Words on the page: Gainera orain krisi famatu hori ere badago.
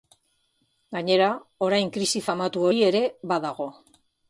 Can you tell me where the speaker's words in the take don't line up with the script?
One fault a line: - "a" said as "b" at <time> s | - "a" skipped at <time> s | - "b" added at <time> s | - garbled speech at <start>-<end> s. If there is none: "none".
none